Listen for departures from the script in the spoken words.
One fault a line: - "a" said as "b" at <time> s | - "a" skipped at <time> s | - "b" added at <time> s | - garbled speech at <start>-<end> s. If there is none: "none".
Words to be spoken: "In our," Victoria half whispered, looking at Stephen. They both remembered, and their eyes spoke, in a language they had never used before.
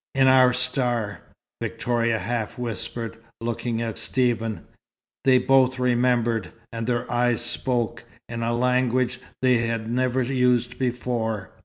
- "star" added at 0.5 s